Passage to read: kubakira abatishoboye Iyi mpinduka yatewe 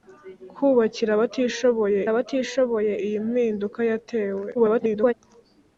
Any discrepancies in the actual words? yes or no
yes